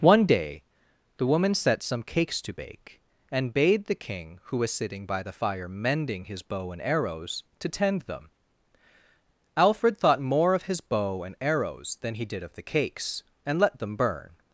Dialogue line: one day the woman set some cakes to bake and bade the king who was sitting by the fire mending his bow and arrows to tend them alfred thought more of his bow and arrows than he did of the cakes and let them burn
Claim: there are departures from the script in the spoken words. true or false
false